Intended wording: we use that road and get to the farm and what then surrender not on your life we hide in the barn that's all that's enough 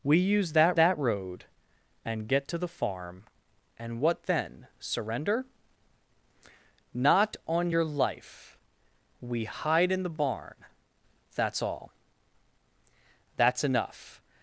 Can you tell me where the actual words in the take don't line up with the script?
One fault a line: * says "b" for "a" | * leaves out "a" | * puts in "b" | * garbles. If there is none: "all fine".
* puts in "that"